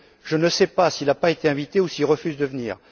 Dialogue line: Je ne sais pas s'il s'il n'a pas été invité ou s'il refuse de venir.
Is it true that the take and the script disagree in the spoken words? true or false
true